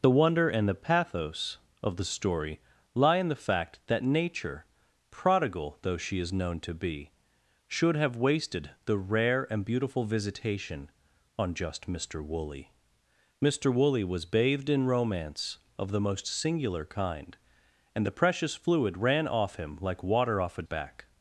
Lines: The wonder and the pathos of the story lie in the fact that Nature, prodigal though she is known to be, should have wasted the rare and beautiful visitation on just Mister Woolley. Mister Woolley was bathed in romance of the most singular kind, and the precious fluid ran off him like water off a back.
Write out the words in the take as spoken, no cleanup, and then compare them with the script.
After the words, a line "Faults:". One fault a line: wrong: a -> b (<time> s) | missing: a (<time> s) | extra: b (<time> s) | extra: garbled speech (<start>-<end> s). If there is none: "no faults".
The wonder and the pathos of the story lie in the fact that Nature, prodigal though she is known to be, should have wasted the rare and beautiful visitation on just Mister Woolley. Mister Woolley was bathed in romance of the most singular kind, and the precious fluid ran off him like water off a back.
Faults:
no faults